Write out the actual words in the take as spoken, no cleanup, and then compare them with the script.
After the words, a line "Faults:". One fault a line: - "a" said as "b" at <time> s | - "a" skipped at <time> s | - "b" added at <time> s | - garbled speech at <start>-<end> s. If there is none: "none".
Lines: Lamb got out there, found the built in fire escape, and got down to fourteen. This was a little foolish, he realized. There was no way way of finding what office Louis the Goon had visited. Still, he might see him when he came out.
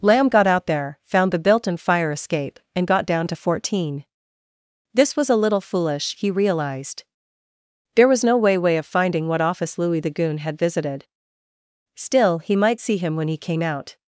Lamb got out there, found the built in fire escape, and got down to fourteen. This was a little foolish, he realized. There was no way way of finding what office Louis the Goon had visited. Still, he might see him when he came out.
Faults:
none